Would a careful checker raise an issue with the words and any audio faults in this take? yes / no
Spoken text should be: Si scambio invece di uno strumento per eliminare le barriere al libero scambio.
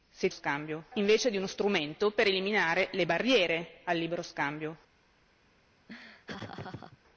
yes